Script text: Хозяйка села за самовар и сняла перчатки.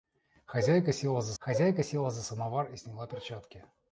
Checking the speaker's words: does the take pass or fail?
fail